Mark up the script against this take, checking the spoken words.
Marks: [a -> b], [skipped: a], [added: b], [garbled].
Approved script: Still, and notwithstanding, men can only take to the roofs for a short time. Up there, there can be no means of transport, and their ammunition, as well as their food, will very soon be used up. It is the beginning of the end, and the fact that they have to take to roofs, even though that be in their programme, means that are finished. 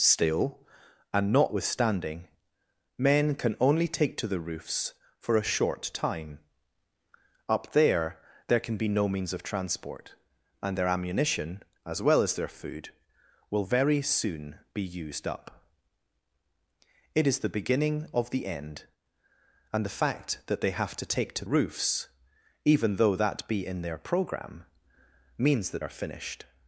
Still, and notwithstanding, men can only take to the roofs for a short time. Up there, there can be no means of transport, and their ammunition, as well as their food, will very soon be used up. It is the beginning of the end, and the fact that they have to take to roofs, even though that be in their programme, means that are finished.